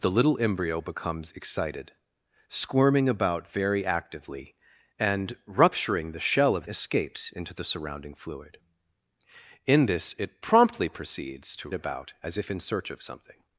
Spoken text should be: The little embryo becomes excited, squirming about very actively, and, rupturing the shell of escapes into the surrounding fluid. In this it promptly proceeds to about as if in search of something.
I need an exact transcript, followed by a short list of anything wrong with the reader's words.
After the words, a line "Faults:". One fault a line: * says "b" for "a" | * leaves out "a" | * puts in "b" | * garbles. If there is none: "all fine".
The little embryo becomes excited, squirming about very actively, and, rupturing the shell of escapes into the surrounding fluid. In this it promptly proceeds to about as if in search of something.
Faults:
all fine